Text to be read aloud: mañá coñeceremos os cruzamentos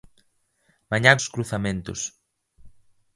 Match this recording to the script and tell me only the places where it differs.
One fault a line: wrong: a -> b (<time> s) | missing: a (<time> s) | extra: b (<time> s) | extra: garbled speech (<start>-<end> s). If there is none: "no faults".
missing: coñeceremos (1.1 s)